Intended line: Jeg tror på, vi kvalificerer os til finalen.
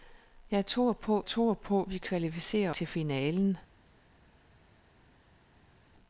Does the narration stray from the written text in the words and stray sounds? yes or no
yes